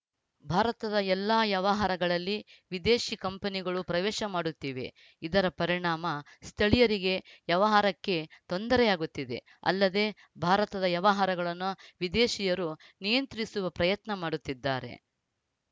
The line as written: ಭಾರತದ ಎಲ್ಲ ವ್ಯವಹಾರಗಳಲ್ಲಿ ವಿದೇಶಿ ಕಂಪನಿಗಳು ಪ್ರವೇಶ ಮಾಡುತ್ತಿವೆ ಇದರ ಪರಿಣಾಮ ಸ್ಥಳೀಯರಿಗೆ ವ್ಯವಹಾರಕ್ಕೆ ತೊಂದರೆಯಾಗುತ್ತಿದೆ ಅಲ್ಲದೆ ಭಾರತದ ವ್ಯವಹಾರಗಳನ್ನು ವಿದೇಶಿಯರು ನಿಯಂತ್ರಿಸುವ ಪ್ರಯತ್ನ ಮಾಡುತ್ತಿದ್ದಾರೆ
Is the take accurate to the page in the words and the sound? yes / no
yes